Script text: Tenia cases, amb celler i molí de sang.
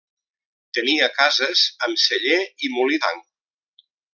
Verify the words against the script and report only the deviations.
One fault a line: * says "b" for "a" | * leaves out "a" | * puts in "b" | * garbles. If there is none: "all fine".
* leaves out "de"